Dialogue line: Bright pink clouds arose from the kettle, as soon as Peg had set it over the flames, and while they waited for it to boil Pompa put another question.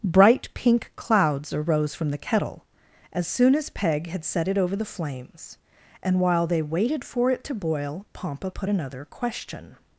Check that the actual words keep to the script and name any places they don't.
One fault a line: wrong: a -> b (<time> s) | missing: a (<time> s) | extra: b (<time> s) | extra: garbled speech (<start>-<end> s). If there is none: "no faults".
no faults